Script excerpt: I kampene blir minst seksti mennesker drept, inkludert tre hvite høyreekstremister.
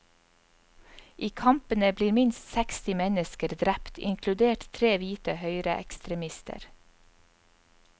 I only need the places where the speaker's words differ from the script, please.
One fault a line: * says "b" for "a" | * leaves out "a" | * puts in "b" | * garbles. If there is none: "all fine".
all fine